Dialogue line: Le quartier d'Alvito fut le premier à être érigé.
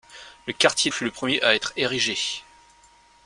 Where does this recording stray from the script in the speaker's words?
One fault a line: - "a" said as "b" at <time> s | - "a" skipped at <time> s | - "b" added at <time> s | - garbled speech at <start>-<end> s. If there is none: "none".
- "d'Alvito" skipped at 0.9 s